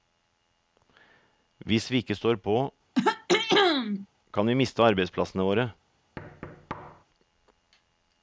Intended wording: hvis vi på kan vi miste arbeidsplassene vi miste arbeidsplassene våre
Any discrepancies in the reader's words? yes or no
yes